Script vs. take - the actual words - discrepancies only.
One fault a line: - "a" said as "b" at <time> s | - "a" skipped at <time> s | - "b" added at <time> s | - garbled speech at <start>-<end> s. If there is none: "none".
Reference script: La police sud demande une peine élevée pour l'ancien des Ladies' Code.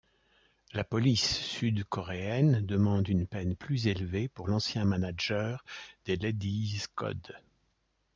- "coréenne" added at 1.8 s
- "plus" added at 3.5 s
- "manager" added at 4.8 s